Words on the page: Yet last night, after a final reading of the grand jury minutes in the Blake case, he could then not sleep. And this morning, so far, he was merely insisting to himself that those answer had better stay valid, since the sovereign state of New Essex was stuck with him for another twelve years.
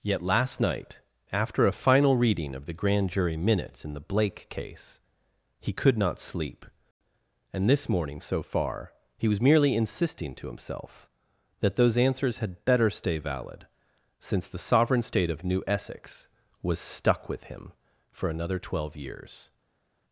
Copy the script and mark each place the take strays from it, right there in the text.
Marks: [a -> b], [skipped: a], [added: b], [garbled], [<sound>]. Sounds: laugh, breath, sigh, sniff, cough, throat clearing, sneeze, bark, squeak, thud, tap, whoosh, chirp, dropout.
Yet last night, after a final reading of the grand jury minutes in the Blake case, he could [skipped: then] not sleep. And this morning, so far, he was merely insisting to himself that those [answer -> answers] had better stay valid, since the sovereign state of New Essex was stuck with him for another twelve years.